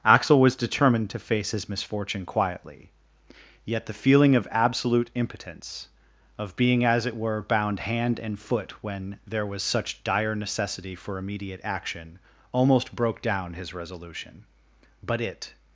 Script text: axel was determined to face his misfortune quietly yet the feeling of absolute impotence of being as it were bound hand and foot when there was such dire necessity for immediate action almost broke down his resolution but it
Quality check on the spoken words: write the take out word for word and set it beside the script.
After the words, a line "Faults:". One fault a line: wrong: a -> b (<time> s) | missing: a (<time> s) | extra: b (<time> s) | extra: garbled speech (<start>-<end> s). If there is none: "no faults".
axel was determined to face his misfortune quietly yet the feeling of absolute impotence of being as it were bound hand and foot when there was such dire necessity for immediate action almost broke down his resolution but it
Faults:
no faults